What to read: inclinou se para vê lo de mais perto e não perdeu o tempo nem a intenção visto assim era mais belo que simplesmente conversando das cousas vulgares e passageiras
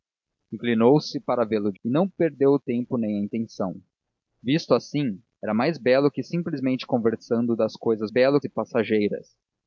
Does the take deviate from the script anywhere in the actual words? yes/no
yes